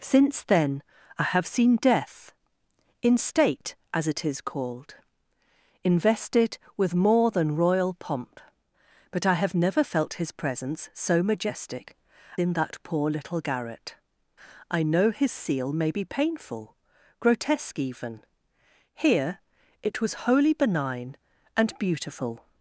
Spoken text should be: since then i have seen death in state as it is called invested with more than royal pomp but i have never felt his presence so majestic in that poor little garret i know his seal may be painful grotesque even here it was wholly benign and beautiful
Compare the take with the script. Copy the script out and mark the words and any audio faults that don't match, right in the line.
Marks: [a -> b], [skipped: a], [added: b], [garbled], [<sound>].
since then i have seen death in state as it is called invested with more than royal pomp but i have never felt his presence so majestic in that poor little garret i know his seal may be painful grotesque even here it was wholly benign and beautiful